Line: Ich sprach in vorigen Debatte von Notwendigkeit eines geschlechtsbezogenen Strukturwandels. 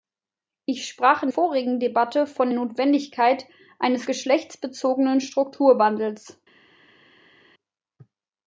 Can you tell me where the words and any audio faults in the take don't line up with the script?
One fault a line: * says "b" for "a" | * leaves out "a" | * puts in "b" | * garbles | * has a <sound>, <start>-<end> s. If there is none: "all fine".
all fine